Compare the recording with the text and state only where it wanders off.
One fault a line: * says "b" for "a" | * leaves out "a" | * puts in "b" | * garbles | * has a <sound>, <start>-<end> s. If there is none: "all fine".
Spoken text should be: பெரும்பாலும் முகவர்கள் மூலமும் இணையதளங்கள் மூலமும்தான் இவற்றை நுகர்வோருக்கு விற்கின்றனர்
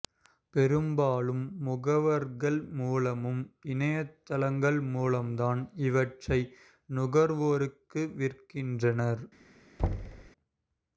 * has a thud, 9.8-10.3 s